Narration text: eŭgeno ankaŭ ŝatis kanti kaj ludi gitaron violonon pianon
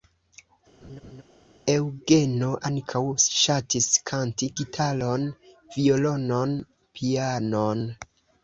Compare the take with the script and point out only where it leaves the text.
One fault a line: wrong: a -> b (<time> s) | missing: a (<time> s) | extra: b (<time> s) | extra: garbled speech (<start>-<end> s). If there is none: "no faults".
missing: kaj ludi (4.5 s)